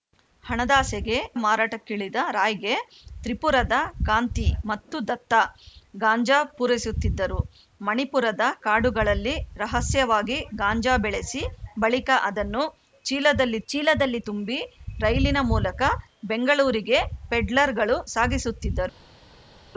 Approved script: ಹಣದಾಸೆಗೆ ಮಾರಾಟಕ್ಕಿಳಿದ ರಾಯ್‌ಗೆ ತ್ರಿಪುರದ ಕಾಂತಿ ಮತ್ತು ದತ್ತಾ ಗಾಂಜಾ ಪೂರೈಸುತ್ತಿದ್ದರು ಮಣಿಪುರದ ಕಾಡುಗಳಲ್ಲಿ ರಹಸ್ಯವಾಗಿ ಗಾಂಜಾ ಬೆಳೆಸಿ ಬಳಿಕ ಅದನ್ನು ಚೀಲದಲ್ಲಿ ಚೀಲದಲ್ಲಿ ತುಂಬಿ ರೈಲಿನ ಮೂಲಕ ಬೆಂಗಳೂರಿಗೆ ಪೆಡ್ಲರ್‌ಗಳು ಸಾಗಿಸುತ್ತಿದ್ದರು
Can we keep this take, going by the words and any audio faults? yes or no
yes